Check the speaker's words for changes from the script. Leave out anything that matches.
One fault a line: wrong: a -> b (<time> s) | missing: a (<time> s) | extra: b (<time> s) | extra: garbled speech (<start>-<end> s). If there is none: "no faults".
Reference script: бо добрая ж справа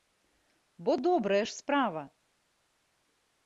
no faults